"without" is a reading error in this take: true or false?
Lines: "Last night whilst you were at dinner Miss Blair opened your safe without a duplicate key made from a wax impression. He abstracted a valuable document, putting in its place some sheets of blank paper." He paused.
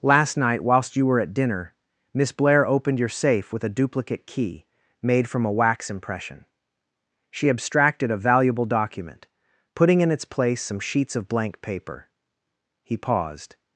true